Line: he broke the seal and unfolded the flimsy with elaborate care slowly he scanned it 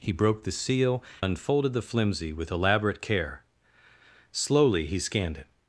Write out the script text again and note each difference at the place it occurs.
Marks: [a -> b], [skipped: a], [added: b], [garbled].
he broke the seal [skipped: and] unfolded the flimsy with elaborate care slowly he scanned it